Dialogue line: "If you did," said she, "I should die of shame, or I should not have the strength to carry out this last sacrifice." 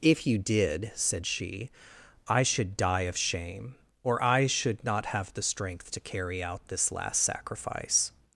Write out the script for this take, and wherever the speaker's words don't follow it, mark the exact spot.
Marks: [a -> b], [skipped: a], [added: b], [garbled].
"If you did," said she, "I should die of shame, or I should not have the strength to carry out this last sacrifice."